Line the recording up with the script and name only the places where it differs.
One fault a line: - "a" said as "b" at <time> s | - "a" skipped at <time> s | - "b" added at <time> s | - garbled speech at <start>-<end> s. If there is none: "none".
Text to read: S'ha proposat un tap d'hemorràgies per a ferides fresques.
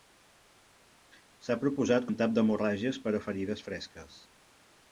none